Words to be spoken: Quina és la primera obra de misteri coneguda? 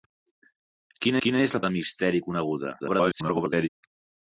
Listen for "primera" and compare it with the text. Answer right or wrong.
wrong